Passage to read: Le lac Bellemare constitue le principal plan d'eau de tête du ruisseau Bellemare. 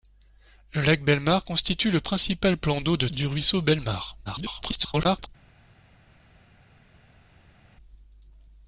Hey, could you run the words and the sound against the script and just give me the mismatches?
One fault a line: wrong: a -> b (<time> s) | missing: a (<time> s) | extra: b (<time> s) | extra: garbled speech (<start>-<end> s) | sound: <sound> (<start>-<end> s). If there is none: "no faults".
missing: tête (3.1 s)
extra: garbled speech (4.3-5.3 s)